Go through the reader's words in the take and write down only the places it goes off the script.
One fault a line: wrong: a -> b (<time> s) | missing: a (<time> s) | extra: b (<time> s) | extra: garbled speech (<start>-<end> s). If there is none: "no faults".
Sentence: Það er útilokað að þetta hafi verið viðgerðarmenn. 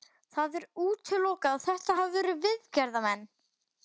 no faults